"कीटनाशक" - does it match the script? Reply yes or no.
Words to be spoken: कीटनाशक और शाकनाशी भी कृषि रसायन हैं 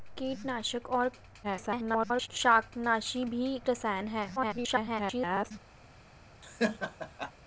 yes